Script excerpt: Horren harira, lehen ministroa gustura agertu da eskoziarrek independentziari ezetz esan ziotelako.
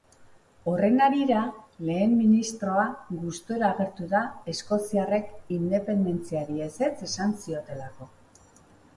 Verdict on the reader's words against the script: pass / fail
pass